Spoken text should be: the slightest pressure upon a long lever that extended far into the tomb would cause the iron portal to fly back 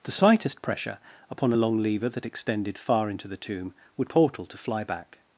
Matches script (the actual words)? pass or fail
fail